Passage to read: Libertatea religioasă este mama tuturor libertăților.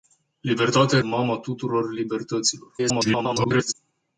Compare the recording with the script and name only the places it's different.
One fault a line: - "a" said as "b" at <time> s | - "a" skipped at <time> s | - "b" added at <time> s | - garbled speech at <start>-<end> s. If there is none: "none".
- "religioasă este" skipped at 1.0 s
- garbled speech at 2.8-3.7 s